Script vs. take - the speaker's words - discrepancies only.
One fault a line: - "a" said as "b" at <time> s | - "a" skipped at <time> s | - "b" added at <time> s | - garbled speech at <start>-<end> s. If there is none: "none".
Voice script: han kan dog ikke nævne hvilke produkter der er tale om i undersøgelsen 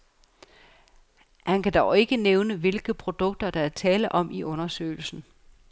none